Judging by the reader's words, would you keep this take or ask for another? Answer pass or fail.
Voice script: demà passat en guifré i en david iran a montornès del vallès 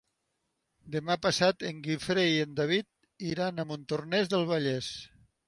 pass